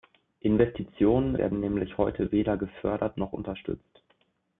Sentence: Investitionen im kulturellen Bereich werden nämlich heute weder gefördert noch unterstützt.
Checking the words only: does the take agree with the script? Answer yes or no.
no